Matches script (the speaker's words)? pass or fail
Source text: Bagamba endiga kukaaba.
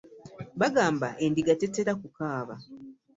fail